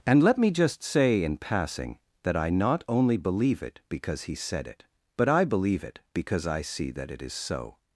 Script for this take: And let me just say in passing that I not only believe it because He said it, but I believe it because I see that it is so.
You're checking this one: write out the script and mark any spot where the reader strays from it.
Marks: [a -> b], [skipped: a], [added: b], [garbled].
And let me just say in passing that I not only believe it because He said it, but I believe it because I see that it is so.